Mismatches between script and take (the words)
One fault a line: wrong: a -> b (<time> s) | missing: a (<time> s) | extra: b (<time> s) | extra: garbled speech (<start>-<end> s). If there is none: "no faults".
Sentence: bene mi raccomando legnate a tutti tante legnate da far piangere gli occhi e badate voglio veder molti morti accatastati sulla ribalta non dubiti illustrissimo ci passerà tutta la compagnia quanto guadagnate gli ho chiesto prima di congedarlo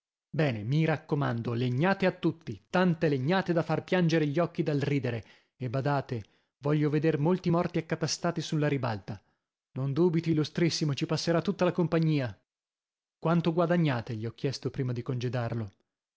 extra: dal ridere (4.6 s)